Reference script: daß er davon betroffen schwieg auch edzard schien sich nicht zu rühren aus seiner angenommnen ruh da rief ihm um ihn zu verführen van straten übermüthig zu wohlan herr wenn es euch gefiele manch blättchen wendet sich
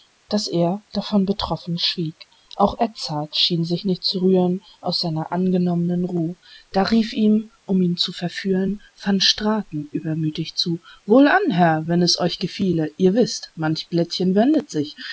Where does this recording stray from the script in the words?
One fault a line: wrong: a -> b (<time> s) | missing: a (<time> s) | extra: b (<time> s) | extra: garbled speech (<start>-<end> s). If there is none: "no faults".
extra: ihr wißt (13.0 s)